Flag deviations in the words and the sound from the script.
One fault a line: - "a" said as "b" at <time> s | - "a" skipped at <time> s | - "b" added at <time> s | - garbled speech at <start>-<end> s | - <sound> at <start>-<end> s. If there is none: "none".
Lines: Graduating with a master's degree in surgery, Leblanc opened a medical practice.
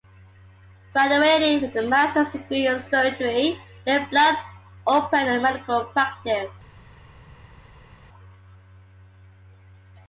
none